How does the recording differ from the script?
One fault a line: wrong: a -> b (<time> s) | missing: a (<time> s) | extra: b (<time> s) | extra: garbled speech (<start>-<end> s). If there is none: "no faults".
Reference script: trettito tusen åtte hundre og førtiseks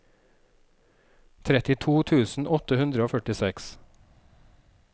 no faults